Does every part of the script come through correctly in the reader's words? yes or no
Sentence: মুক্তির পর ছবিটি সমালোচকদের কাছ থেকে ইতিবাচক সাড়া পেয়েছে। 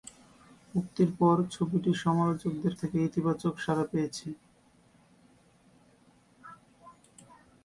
no